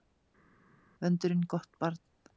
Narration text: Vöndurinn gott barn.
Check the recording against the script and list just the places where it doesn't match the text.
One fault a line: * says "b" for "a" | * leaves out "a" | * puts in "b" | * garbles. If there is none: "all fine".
all fine